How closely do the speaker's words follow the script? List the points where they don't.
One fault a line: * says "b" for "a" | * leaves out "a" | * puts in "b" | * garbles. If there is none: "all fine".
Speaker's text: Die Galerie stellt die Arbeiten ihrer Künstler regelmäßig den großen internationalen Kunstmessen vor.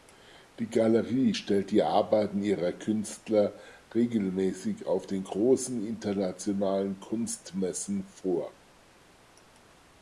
* puts in "auf"